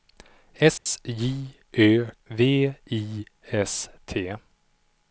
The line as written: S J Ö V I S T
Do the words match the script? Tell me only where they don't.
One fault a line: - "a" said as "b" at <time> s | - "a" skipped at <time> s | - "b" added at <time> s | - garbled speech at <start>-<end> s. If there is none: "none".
none